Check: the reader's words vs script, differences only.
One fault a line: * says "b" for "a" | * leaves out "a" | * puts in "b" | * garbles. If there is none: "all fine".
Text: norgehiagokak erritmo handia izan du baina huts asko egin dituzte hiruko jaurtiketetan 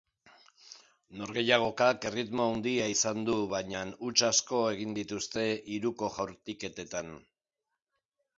all fine